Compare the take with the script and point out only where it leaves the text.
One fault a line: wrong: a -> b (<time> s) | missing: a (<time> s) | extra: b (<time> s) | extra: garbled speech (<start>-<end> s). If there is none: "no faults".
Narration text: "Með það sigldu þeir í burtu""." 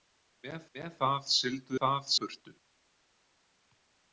extra: með (0.8 s)
wrong: þeir -> það (1.8 s)